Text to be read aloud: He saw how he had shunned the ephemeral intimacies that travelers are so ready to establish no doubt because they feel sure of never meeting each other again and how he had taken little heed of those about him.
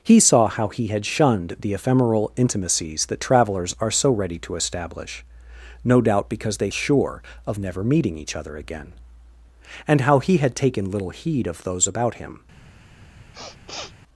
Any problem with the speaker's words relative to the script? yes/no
yes